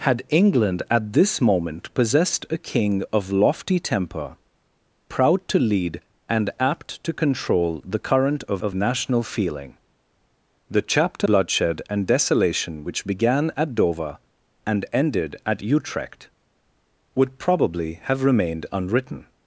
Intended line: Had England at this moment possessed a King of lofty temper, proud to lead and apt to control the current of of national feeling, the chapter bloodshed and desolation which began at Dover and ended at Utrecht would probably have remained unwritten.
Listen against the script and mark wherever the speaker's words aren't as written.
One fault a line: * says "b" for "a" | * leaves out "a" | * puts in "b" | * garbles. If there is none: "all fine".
all fine